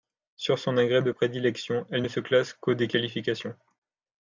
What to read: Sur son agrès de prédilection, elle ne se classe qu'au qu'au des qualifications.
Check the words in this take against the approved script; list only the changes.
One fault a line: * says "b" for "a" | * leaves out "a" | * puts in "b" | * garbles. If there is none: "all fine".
* leaves out "qu'au"